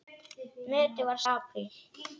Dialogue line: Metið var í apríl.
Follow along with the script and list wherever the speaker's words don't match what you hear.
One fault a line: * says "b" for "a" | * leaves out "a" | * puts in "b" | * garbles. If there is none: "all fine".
all fine